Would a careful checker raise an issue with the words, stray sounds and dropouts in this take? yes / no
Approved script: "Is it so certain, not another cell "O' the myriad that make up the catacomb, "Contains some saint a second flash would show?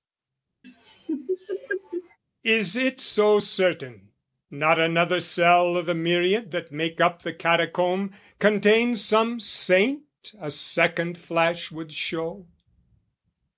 yes